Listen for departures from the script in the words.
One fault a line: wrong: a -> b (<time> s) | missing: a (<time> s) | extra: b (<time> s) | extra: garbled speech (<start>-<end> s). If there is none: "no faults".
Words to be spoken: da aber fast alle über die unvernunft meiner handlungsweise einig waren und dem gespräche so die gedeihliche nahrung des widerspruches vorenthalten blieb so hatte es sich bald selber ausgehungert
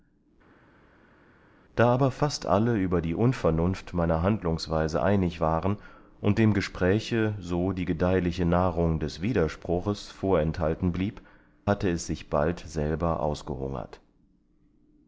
missing: so (11.2 s)